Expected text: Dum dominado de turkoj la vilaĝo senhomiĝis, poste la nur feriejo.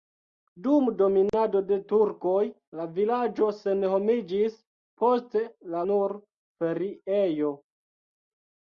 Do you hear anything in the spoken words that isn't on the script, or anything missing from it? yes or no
no